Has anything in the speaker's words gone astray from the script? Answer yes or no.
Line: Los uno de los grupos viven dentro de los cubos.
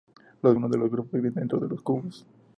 no